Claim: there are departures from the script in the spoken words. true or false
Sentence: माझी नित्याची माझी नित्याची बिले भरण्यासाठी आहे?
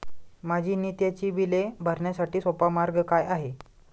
true